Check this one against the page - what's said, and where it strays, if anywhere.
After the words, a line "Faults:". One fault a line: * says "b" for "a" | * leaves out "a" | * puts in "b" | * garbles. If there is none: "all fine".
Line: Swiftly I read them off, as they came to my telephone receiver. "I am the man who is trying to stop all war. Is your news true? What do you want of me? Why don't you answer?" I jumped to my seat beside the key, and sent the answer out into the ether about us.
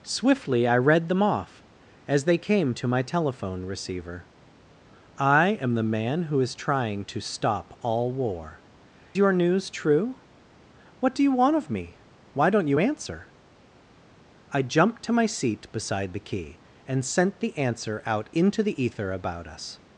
Swiftly I read them off, as they came to my telephone receiver. "I am the man who is trying to stop all war. Your news true? What do you want of me? Why don't you answer?" I jumped to my seat beside the key, and sent the answer out into the ether about us.
Faults:
* leaves out "Is"